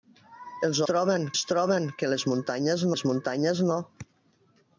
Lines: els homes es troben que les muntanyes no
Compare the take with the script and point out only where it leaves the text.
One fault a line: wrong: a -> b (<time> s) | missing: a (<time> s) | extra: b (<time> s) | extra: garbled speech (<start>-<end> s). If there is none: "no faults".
wrong: homes -> troben (0.9 s)
extra: les muntanyes (2.9 s)